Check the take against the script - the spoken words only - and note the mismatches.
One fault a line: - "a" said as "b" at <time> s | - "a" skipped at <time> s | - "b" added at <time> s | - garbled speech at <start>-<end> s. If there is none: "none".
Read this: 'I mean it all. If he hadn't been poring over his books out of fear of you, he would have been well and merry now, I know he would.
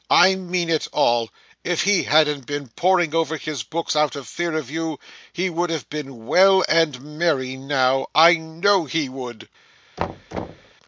none